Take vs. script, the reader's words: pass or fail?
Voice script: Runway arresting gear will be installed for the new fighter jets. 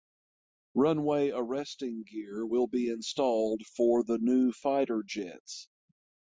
pass